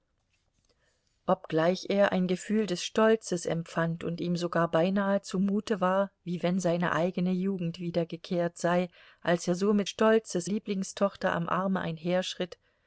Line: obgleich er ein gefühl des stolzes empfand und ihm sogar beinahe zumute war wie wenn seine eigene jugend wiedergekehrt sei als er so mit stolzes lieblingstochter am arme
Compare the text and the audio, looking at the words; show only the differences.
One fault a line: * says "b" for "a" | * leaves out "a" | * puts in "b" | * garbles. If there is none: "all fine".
all fine